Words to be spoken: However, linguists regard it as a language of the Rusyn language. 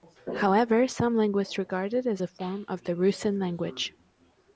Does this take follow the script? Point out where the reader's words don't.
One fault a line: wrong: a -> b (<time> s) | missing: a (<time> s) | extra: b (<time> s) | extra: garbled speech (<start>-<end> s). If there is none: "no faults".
extra: some (0.9 s)
wrong: language -> form (2.3 s)